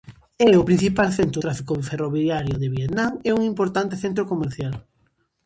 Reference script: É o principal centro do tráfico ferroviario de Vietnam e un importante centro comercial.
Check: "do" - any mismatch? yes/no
yes